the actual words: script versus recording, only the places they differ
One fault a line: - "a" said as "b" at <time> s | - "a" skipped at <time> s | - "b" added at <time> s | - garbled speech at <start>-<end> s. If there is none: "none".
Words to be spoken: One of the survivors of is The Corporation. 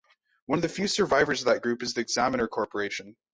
- "few" added at 0.7 s
- "that group" added at 1.4 s
- "Examiner" added at 2.0 s